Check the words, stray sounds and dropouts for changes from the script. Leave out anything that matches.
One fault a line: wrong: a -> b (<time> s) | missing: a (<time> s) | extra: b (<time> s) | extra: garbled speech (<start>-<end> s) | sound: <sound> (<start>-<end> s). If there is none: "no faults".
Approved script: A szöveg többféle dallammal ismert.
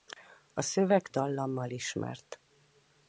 missing: többféle (1.1 s)